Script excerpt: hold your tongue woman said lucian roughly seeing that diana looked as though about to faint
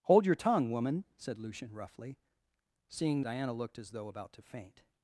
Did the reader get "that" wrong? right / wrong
wrong